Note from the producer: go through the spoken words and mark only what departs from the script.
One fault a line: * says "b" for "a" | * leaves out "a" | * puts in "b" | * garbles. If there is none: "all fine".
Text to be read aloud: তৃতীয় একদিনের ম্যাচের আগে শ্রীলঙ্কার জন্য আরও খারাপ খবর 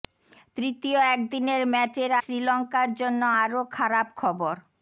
* leaves out "আগে"